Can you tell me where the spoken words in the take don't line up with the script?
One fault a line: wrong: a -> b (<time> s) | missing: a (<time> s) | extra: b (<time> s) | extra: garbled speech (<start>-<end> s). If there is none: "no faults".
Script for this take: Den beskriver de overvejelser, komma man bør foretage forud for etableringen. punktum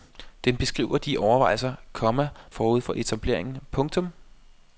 missing: man bør foretage (2.3 s)